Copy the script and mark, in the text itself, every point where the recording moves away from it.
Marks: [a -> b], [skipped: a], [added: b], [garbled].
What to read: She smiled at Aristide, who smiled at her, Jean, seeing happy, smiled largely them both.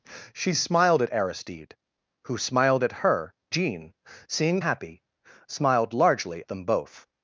She smiled at Aristide, who smiled at her, Jean, seeing happy, smiled largely them both.